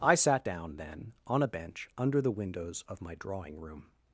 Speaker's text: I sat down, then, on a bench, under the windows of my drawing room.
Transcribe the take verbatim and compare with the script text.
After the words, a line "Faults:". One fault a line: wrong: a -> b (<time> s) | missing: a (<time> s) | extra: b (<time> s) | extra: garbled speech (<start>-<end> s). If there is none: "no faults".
I sat down, then, on a bench, under the windows of my drawing room.
Faults:
no faults